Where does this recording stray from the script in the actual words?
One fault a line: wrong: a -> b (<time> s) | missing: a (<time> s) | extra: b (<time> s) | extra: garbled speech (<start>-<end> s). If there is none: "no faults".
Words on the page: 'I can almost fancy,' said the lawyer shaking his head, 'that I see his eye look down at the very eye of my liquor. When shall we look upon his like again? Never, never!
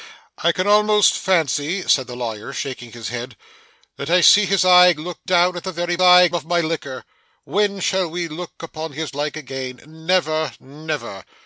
no faults